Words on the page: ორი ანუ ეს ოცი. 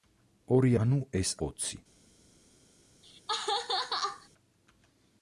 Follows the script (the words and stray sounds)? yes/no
no